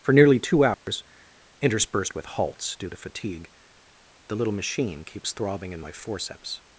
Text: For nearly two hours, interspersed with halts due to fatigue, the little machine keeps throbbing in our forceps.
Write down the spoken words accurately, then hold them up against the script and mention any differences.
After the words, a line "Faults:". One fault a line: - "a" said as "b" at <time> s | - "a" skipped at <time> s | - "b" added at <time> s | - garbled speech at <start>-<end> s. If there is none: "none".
For nearly two hours, interspersed with halts due to fatigue, the little machine keeps throbbing in my forceps.
Faults:
- "our" said as "my" at 5.8 s